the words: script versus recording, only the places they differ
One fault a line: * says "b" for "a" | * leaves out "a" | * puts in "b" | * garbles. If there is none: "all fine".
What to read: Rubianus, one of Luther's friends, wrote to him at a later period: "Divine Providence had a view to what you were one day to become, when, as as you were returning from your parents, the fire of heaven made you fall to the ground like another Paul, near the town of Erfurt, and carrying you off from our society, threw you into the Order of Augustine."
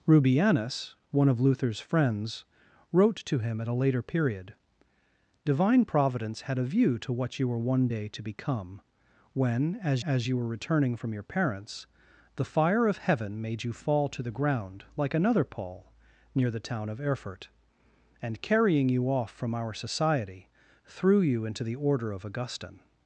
all fine